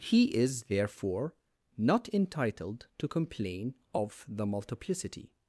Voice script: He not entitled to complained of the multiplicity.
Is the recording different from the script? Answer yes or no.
yes